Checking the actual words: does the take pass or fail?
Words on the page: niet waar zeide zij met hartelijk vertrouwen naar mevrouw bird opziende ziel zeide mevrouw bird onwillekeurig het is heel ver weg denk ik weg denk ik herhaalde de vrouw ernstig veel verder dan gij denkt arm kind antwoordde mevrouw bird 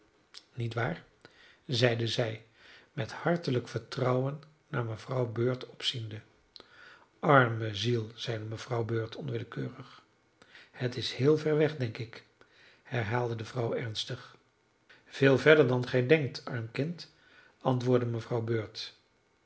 fail